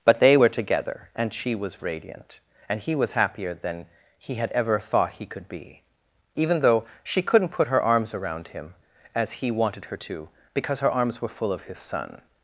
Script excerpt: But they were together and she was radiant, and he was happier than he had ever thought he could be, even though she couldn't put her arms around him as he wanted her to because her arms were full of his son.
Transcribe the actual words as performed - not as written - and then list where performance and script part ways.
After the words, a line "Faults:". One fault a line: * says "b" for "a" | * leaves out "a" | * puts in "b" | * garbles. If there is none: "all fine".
But they were together and she was radiant, and he was happier than he had ever thought he could be, even though she couldn't put her arms around him as he wanted her to because her arms were full of his son.
Faults:
all fine